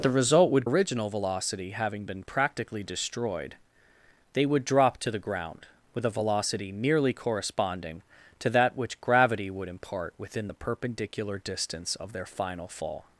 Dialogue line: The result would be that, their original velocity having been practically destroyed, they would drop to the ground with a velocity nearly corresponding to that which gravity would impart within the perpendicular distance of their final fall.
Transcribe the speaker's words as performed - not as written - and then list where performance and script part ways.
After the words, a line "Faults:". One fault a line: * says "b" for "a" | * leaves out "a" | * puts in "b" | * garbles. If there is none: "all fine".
The result would original velocity having been practically destroyed, they would drop to the ground with a velocity nearly corresponding to that which gravity would impart within the perpendicular distance of their final fall.
Faults:
* leaves out "be that their"